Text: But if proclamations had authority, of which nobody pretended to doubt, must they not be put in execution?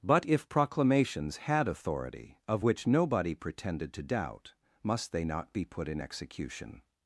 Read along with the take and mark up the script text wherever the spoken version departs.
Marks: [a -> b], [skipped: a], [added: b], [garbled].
But if proclamations had authority, of which nobody pretended to doubt, must they not be put in execution?